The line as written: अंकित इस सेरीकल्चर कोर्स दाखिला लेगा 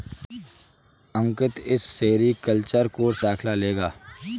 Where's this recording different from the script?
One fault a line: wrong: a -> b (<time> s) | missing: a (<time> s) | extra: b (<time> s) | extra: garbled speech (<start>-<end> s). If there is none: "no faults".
no faults